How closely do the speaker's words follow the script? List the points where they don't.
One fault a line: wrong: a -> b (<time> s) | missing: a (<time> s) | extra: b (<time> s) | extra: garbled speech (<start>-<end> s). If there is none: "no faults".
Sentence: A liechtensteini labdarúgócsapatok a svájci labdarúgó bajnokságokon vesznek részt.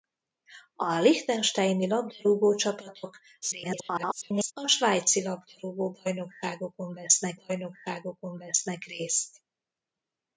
extra: garbled speech (3.4-4.5 s)
extra: bajnokságokon vesznek (7.3 s)